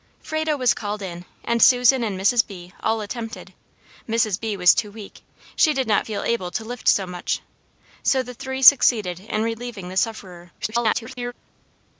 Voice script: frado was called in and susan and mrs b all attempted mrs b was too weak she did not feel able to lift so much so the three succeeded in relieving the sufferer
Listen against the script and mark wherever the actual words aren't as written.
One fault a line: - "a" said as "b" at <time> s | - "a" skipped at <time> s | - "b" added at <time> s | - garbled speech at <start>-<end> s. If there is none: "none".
- garbled speech at 10.6-11.3 s